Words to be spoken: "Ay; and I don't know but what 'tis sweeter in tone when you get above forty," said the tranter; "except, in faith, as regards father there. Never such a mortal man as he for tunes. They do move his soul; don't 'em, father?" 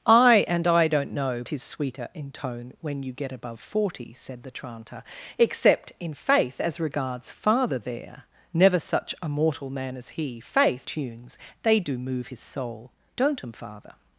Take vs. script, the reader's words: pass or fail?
fail